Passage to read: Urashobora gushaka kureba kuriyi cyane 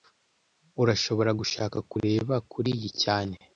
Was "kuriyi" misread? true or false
false